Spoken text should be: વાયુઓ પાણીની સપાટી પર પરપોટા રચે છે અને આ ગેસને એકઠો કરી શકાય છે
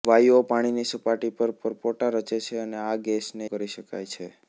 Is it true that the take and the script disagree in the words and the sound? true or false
true